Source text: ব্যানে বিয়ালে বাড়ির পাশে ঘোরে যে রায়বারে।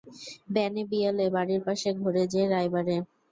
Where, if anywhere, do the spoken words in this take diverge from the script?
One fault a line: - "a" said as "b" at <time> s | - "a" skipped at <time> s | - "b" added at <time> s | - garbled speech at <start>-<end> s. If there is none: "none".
none